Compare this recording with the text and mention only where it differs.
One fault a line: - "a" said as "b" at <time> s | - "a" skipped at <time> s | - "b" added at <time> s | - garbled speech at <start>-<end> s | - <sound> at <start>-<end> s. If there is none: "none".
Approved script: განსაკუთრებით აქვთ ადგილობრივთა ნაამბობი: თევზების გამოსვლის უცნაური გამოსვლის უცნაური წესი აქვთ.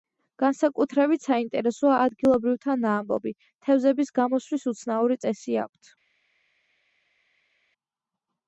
- "აქვთ" said as "საინტერესოა" at 1.2 s
- "გამოსვლის უცნაური" skipped at 5.2 s